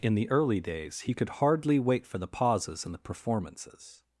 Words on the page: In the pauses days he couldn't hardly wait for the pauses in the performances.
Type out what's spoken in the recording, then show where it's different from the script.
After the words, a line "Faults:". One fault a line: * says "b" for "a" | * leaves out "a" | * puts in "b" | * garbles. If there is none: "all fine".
In the early days he could hardly wait for the pauses in the performances.
Faults:
* says "early" for "pauses"
* says "could" for "couldn't"